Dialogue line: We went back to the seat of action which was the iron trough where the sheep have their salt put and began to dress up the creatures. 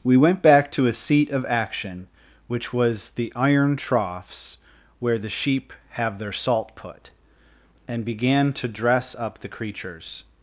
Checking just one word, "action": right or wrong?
right